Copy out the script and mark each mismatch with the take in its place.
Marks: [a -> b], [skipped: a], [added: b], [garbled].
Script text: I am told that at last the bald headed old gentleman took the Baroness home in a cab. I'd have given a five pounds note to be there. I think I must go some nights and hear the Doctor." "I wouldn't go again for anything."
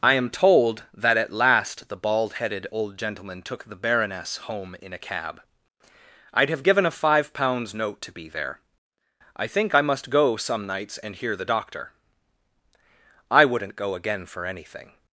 I am told that at last the bald headed old gentleman took the Baroness home in a cab. I'd have given a five pounds note to be there. I think I must go some nights and hear the Doctor." "I wouldn't go again for anything."